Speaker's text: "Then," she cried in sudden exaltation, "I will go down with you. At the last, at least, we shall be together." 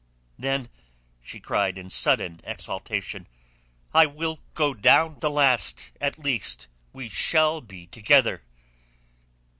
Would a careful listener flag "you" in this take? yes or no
yes